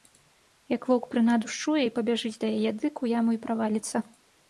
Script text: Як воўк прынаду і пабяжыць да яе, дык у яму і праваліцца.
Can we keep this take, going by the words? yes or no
no